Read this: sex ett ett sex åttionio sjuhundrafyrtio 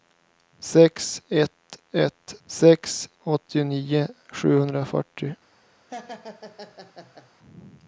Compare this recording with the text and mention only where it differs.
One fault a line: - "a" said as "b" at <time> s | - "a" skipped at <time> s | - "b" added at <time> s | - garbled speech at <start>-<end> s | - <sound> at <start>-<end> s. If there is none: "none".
- laugh at 5.9-7.3 s